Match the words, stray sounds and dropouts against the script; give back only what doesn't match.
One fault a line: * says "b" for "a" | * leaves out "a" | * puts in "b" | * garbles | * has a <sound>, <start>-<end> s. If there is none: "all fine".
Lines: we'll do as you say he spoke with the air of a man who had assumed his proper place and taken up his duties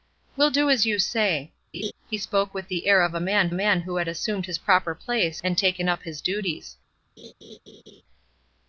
* has a laugh, 1.7-1.9 s
* puts in "man"
* has a laugh, 7.2-8.0 s